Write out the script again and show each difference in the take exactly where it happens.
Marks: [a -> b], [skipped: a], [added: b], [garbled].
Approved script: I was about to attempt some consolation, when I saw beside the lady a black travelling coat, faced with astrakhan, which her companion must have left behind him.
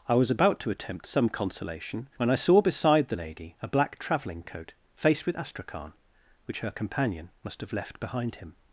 I was about to attempt some consolation, when I saw beside the lady a black travelling coat, faced with astrakhan, which her companion must have left behind him.